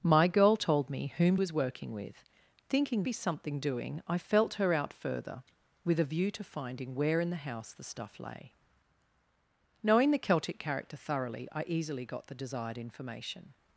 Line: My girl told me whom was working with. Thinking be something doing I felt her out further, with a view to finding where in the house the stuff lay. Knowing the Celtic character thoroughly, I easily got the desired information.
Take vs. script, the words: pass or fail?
pass